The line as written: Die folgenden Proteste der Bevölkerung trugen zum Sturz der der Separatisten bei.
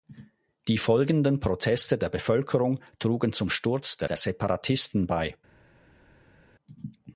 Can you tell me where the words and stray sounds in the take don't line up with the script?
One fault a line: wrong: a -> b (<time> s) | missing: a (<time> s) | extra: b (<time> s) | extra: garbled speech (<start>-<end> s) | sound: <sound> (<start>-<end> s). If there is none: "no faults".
no faults